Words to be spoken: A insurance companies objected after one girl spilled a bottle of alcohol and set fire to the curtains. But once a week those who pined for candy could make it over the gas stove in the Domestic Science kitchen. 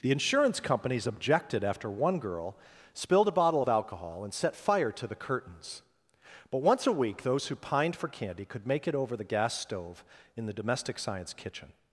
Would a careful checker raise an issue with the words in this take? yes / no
yes